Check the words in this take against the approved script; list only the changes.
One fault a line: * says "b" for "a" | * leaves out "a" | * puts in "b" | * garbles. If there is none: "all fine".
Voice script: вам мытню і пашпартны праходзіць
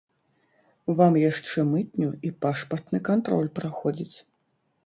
* puts in "яшчэ"
* puts in "кантроль"